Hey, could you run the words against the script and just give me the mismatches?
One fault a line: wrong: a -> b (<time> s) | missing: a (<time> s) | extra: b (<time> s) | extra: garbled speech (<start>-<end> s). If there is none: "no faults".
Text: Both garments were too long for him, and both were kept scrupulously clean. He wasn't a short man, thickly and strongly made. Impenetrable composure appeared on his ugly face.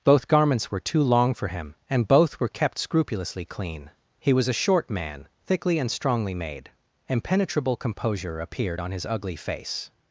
wrong: wasn't -> was (4.3 s)